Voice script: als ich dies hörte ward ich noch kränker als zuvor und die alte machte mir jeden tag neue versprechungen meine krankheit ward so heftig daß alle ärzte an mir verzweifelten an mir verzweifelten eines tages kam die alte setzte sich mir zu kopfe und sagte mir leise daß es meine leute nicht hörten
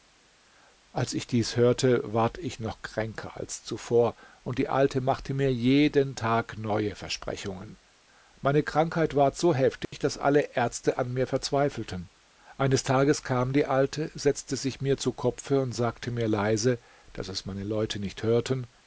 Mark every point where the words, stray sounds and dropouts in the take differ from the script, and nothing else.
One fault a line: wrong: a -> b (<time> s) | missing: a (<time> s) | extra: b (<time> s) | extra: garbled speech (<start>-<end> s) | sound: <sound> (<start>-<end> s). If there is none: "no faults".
sound: dropout (9.8-9.9 s)
missing: an mir verzweifelten (12.1 s)